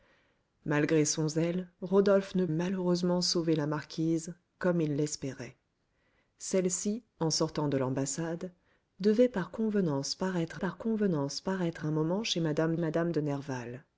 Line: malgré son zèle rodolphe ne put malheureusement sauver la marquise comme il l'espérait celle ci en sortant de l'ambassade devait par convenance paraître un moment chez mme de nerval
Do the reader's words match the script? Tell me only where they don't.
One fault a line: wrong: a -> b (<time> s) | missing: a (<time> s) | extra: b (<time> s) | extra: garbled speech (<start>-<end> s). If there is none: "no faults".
missing: put (2.5 s)
extra: par convenance paraître (10.6 s)
extra: mme (12.8 s)